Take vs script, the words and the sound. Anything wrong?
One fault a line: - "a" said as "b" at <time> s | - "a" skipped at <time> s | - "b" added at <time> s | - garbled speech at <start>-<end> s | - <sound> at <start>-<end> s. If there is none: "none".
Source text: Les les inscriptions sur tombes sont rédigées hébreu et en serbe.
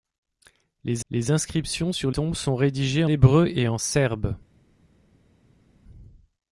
none